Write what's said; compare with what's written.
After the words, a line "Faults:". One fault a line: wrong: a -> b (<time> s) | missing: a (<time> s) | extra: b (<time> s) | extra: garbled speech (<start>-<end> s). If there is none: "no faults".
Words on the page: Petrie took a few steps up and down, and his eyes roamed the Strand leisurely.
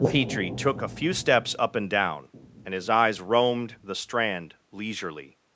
Petrie took a few steps up and down, and his eyes roamed the Strand leisurely.
Faults:
no faults